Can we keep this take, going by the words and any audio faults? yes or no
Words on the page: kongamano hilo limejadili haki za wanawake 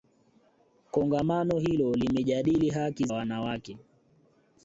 no